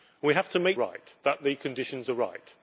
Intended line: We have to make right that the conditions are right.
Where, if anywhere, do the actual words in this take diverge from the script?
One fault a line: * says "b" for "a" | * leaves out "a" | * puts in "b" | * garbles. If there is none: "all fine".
all fine